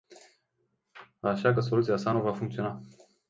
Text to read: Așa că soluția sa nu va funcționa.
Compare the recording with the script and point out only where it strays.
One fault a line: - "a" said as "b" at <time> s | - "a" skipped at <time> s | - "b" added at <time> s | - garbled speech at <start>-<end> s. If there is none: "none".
none